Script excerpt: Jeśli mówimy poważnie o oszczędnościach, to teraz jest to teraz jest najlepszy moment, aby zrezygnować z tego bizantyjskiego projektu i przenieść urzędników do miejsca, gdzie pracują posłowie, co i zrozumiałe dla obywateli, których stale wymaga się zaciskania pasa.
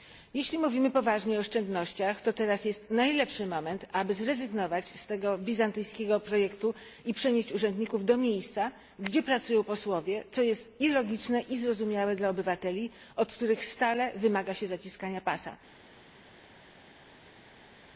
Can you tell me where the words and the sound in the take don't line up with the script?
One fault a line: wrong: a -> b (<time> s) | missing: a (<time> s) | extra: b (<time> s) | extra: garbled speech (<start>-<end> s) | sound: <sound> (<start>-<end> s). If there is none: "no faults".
missing: to teraz jest (2.9 s)
extra: jest (10.4 s)
extra: logiczne i (10.9 s)
extra: od (13.2 s)